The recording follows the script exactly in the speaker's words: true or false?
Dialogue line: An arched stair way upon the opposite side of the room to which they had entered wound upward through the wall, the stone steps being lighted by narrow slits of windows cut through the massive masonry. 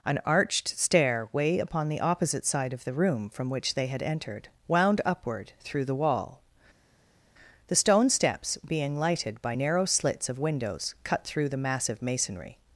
false